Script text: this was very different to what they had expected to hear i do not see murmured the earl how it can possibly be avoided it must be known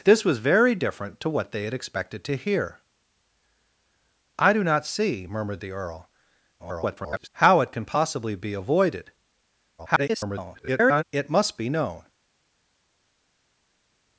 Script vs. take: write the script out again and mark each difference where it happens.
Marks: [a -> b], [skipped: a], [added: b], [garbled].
this was very different to what they had expected to hear i do not see murmured the earl [garbled] how it can possibly be avoided [garbled] it must be known